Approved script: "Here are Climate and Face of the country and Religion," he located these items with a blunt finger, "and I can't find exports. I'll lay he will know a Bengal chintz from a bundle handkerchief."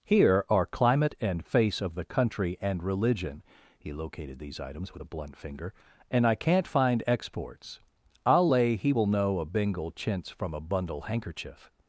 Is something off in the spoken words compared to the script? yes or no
no